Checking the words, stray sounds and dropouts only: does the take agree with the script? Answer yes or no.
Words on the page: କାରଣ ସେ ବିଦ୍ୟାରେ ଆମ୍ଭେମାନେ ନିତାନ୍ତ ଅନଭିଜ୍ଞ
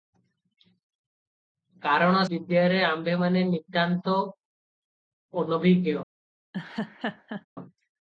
no